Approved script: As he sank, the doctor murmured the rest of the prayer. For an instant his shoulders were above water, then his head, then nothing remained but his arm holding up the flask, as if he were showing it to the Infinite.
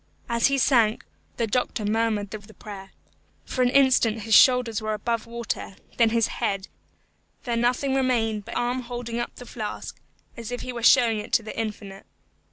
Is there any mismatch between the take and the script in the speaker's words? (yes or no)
yes